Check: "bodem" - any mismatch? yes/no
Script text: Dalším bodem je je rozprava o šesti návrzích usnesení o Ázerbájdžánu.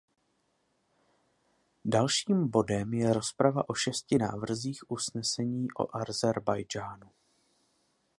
no